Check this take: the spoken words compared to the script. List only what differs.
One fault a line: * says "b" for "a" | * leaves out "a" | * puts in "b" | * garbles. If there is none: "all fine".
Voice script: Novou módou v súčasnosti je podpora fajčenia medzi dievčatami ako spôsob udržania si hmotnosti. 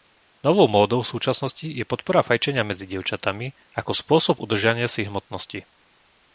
all fine